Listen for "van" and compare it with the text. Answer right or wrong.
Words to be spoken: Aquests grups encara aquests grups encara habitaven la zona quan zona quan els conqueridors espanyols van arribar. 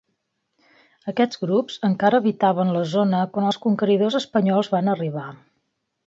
right